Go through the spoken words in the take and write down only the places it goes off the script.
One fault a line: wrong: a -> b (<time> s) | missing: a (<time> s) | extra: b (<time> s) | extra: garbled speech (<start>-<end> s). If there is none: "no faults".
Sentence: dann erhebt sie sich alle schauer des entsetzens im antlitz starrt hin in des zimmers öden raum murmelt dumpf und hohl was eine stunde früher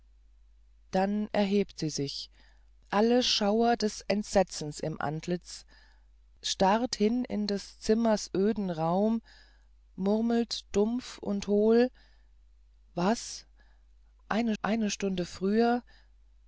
extra: eine (14.6 s)